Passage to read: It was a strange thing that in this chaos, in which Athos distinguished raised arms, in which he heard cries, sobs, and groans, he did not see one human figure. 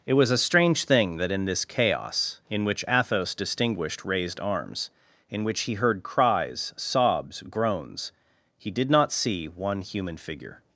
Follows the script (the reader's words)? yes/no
no